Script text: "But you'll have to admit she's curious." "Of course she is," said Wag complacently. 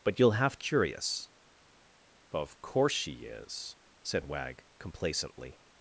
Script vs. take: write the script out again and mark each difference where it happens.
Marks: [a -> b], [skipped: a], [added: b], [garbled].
"But you'll have [skipped: to admit she's] curious." "Of course she is," said Wag complacently.